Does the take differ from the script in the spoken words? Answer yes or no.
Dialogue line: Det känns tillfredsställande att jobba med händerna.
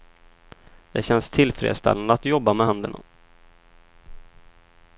no